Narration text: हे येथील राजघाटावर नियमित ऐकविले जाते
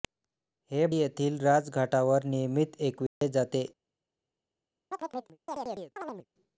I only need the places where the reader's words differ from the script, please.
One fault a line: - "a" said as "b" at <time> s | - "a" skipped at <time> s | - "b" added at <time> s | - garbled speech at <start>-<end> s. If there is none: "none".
none